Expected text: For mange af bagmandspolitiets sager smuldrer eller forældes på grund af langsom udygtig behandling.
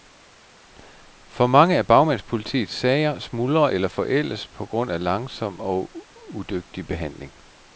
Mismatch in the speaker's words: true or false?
true